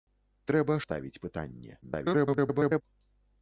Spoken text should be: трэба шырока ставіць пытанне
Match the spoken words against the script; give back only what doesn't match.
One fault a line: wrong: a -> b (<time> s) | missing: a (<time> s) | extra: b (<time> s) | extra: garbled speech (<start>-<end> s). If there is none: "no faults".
missing: шырока (0.8 s)
extra: garbled speech (1.8-2.8 s)